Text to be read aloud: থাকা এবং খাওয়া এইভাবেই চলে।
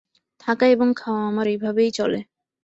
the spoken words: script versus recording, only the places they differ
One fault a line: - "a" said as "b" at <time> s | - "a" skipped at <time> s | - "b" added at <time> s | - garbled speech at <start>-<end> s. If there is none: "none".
- "আমার" added at 1.3 s